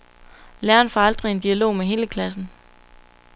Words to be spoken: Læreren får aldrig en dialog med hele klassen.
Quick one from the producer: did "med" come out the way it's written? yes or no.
yes